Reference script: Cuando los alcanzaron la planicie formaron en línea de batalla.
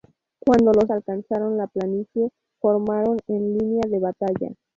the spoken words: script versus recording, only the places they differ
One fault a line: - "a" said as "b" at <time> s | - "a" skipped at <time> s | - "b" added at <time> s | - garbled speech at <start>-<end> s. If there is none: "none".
none